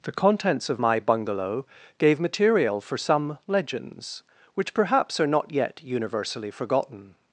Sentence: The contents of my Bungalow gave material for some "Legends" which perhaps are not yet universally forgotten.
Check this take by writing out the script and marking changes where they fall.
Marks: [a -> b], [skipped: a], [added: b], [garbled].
The contents of my Bungalow gave material for some "Legends" which perhaps are not yet universally forgotten.